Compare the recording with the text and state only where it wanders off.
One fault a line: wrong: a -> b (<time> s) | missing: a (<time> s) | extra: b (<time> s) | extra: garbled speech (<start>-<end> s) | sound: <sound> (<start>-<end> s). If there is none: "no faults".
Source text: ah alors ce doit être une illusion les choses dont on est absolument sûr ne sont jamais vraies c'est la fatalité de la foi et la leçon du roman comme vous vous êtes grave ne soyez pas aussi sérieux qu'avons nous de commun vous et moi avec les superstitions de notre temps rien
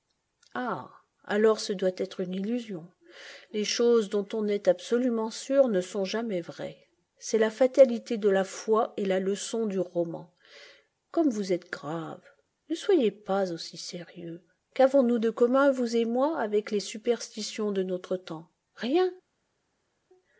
missing: vous (11.5 s)